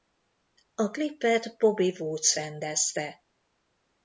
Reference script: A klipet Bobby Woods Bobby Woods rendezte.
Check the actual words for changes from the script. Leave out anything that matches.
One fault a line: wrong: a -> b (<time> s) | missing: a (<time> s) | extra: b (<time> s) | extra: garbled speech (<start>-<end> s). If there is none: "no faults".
missing: Bobby Woods (2.4 s)